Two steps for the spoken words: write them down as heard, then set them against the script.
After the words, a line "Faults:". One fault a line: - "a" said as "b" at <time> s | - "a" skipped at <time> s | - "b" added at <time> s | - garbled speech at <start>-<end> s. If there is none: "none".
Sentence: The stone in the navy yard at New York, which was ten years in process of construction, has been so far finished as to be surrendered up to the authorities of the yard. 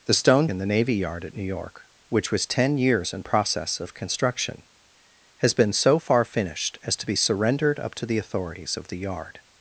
The stone in the navy yard at New York, which was ten years in process of construction, has been so far finished as to be surrendered up to the authorities of the yard.
Faults:
none